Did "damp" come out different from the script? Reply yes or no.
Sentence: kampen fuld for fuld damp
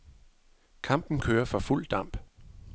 no